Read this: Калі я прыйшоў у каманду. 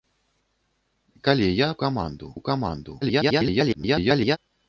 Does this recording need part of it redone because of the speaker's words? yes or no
yes